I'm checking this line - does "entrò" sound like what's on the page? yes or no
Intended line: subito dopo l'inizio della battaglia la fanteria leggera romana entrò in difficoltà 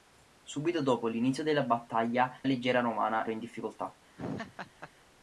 no